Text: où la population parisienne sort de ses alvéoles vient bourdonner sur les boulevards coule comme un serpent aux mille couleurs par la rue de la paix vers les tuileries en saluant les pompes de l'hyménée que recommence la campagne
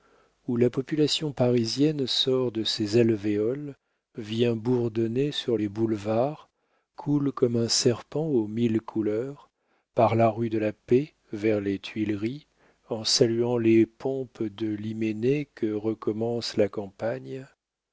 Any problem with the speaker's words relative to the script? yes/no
no